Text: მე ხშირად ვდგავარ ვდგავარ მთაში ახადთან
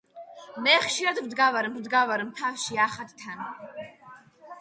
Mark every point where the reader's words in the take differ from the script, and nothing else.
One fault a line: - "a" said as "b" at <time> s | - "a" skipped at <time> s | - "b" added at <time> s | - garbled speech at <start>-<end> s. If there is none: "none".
none